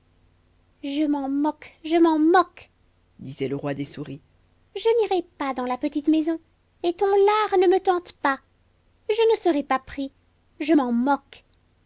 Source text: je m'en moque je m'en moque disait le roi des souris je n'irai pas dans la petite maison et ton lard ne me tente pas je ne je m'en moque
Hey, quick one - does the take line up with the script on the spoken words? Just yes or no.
no